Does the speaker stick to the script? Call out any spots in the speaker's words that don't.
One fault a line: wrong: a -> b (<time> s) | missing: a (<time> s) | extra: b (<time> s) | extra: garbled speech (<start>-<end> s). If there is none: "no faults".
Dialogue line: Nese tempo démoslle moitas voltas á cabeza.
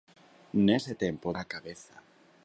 missing: démoslle moitas voltas (1.3 s)